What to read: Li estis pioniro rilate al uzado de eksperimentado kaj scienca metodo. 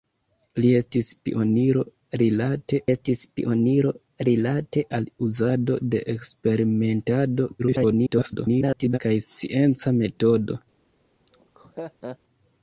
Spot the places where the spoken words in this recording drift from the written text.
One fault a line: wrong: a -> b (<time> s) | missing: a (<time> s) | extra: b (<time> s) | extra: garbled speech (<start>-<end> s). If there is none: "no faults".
extra: estis pioniro rilate (2.9 s)
extra: garbled speech (7.6-9.0 s)